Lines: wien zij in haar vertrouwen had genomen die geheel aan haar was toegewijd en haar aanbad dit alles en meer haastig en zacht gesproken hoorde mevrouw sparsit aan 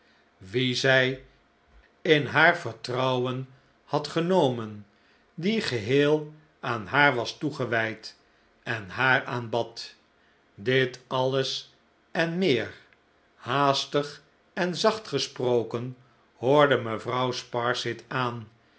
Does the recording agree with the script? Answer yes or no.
yes